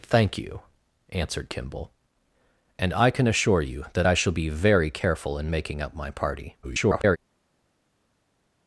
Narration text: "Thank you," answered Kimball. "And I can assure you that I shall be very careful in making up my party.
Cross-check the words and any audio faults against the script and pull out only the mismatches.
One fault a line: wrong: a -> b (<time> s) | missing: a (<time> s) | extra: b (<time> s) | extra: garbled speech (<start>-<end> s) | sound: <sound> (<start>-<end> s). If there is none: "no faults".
extra: garbled speech (6.6-7.2 s)